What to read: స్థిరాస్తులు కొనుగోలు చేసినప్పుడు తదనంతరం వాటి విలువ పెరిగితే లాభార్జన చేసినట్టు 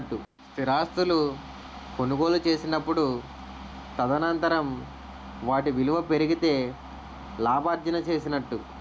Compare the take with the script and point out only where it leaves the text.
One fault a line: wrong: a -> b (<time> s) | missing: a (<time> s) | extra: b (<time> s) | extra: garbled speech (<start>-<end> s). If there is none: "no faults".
no faults